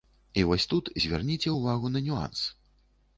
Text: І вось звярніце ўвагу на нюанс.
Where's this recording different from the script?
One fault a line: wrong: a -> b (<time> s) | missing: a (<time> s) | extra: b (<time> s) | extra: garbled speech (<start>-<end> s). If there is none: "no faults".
extra: тут (0.7 s)